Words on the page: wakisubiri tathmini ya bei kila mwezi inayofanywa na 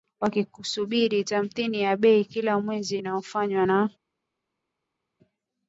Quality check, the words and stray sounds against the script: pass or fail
pass